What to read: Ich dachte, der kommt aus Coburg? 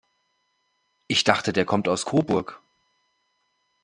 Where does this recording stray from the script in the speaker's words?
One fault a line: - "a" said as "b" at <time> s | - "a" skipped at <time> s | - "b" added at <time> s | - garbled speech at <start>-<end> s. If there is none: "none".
none